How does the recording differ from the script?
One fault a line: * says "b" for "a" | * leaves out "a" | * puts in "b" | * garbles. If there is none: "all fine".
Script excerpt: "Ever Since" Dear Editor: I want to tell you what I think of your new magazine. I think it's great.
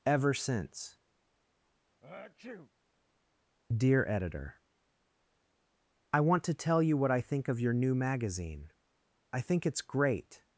all fine